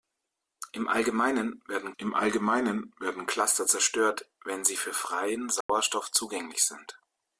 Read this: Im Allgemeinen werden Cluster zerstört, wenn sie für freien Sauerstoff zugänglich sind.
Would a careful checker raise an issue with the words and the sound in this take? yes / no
yes